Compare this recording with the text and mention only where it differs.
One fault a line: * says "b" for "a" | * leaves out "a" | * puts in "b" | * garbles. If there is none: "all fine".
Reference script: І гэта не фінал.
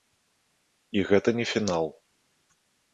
all fine